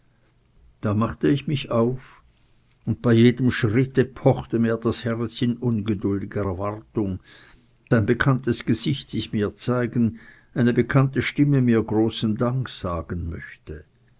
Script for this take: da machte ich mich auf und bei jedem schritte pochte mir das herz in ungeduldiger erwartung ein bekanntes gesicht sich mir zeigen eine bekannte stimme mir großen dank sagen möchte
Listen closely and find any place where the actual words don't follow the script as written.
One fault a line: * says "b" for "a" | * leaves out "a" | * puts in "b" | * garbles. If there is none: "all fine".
all fine